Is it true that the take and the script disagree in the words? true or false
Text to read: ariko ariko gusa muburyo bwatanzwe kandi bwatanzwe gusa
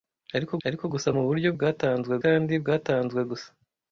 false